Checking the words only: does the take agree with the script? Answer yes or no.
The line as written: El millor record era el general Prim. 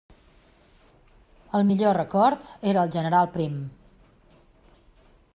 yes